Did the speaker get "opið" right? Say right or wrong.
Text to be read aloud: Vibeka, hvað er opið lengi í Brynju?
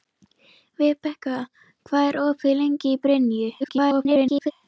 right